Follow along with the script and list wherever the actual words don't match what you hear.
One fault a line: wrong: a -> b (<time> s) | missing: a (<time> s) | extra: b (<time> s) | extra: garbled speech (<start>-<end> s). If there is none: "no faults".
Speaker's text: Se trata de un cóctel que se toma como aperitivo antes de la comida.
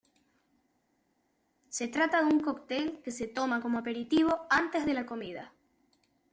no faults